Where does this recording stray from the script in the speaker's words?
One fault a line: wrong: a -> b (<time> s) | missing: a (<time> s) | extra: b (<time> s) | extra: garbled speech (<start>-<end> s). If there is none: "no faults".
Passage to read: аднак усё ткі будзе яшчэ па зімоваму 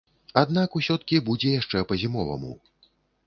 no faults